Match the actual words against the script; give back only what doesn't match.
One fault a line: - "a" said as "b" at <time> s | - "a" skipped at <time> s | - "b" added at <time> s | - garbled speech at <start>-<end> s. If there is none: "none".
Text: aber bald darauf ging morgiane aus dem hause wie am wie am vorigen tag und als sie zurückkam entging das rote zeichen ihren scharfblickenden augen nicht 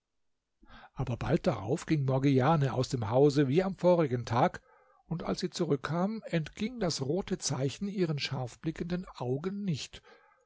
- "wie am" skipped at 3.8 s